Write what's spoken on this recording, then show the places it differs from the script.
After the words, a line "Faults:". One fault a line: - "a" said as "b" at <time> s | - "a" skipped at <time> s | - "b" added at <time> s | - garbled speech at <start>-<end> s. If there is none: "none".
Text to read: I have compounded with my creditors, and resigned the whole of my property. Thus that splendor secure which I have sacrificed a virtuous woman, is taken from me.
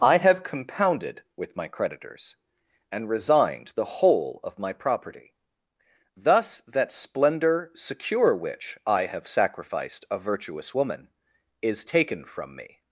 I have compounded with my creditors, and resigned the whole of my property. Thus that splendor secure which I have sacrificed a virtuous woman, is taken from me.
Faults:
none